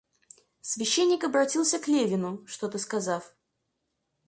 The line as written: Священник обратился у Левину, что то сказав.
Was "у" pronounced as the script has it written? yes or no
no